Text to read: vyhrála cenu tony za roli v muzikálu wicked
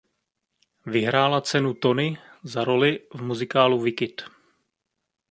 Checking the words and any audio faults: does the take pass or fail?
pass